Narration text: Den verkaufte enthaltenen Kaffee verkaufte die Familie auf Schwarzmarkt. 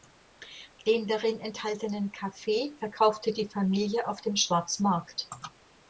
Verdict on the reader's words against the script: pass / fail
fail